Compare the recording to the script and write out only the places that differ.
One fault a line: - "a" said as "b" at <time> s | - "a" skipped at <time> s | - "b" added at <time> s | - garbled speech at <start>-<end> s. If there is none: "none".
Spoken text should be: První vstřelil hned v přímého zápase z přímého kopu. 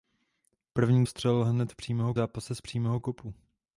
none